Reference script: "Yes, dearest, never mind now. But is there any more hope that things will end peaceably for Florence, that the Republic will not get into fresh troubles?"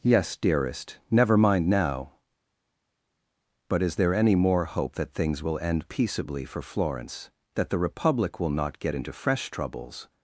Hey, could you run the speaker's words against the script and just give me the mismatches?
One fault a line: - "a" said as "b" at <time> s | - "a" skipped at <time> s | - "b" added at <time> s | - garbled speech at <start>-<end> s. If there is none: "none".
none